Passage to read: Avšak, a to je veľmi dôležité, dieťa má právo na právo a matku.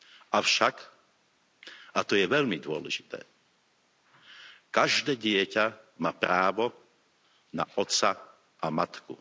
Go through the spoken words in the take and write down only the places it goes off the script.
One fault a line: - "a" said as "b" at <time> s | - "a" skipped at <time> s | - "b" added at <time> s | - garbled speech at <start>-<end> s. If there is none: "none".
- "každé" added at 4.7 s
- "právo" said as "otca" at 7.8 s